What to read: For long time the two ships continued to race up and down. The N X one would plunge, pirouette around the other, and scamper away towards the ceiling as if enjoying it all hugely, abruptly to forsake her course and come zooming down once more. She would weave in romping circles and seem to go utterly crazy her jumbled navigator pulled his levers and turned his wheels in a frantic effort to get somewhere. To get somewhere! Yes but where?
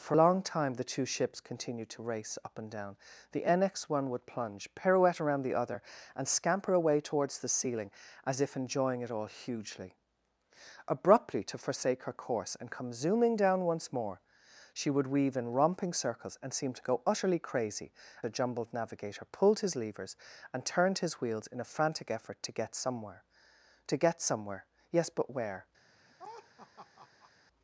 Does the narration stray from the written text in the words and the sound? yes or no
yes